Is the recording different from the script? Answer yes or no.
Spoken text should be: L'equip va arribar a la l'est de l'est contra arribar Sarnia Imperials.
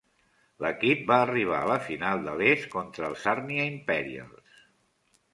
yes